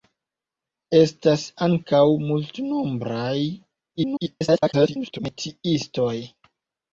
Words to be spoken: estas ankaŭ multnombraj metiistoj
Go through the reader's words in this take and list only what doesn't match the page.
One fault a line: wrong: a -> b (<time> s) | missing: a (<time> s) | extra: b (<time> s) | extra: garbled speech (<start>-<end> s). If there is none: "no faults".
extra: garbled speech (4.0-5.2 s)